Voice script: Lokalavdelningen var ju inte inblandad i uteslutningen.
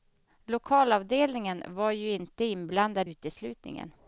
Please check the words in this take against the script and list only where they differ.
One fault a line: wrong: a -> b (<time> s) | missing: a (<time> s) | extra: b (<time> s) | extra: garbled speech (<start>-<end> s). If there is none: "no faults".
missing: i (3.1 s)